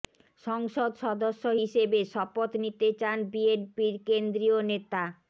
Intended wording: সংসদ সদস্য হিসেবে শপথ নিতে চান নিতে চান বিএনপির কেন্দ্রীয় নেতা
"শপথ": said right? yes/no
yes